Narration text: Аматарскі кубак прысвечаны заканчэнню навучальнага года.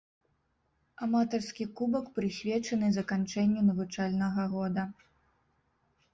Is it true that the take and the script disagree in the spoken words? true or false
false